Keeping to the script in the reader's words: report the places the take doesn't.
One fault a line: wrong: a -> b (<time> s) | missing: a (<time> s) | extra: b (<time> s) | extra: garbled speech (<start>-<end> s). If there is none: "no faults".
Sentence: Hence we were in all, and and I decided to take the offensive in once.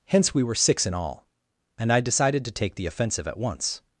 extra: six (0.6 s)
missing: and (1.9 s)
wrong: in -> at (3.3 s)